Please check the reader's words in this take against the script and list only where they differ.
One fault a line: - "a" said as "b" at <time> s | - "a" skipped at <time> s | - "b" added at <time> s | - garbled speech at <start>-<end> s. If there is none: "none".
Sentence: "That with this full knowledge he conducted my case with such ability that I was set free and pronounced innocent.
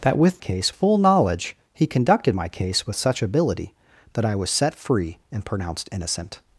- "this" said as "case" at 0.4 s